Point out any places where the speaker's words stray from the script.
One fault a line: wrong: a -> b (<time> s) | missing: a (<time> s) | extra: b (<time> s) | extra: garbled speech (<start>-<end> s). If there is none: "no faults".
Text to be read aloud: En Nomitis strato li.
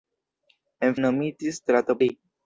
no faults